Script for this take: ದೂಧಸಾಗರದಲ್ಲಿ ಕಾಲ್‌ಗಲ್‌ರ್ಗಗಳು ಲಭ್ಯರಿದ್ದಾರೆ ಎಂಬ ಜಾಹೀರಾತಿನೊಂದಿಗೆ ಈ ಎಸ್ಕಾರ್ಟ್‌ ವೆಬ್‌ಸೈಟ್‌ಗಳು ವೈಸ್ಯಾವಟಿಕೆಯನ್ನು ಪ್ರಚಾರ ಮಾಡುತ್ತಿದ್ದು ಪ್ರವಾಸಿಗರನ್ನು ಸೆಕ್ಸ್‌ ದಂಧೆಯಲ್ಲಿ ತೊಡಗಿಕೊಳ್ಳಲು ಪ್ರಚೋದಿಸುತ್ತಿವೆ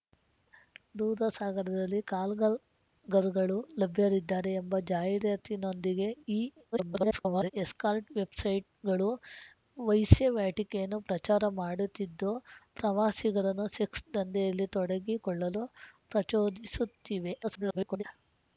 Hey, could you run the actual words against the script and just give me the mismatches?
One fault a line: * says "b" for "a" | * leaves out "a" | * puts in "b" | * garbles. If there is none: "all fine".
* garbles
* garbles